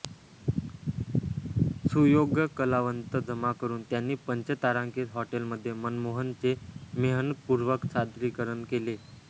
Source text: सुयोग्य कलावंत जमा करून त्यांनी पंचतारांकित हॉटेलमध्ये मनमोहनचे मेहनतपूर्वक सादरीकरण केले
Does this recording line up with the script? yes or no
yes